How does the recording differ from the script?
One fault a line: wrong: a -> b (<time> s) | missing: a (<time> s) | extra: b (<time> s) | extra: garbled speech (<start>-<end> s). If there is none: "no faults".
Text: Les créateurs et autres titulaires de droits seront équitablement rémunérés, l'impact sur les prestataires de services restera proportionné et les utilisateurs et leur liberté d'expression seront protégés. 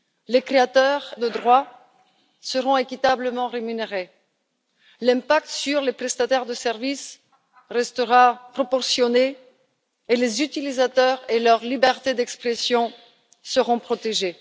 missing: et autres titulaires (1.1 s)